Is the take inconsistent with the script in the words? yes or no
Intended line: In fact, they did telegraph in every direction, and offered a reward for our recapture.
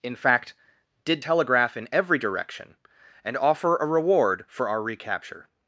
yes